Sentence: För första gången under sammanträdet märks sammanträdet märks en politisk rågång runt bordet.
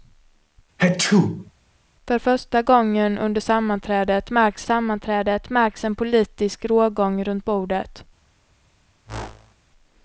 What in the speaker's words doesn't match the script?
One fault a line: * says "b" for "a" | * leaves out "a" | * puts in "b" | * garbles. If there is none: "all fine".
all fine